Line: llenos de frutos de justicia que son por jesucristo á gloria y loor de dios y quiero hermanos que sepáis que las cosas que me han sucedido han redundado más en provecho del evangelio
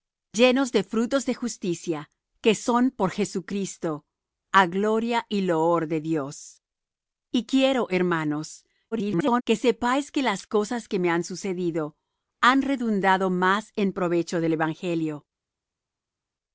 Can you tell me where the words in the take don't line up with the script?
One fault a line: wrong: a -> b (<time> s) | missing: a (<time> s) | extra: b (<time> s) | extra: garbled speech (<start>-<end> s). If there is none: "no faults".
extra: garbled speech (8.9-9.4 s)